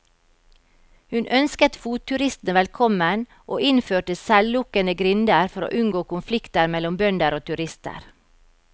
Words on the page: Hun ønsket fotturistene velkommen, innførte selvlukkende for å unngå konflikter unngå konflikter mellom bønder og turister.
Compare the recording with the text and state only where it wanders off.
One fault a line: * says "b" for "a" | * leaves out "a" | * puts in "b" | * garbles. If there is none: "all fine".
* puts in "og"
* puts in "grinder"
* leaves out "unngå konflikter"